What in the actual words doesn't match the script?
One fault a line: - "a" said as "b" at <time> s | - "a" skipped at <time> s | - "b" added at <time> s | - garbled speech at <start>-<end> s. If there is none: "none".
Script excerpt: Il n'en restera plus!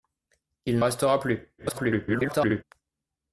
- "n'en" skipped at 0.8 s
- garbled speech at 1.6-2.6 s